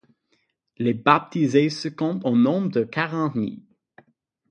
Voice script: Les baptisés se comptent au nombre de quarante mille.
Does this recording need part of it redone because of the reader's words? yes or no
no